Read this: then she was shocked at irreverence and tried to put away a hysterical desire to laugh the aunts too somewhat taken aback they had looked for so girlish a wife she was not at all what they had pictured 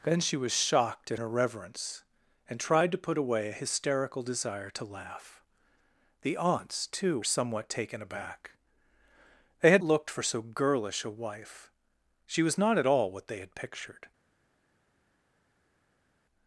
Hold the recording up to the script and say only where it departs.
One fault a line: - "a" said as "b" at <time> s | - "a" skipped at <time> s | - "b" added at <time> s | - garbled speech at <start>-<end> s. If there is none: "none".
none